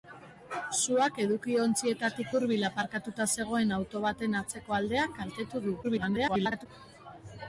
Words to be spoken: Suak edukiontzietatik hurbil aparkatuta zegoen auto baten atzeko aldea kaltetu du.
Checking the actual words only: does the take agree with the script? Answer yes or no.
no